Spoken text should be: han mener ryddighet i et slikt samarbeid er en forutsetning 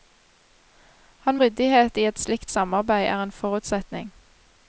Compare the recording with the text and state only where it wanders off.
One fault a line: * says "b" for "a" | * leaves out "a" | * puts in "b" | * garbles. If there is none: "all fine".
* leaves out "mener"